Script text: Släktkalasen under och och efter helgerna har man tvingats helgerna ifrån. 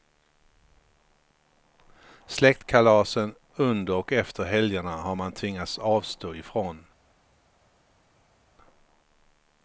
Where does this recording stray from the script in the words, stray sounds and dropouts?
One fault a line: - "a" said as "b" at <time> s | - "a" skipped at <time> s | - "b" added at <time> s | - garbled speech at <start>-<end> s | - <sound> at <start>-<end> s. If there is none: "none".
- "och" skipped at 4.1 s
- "helgerna" said as "avstå" at 5.8 s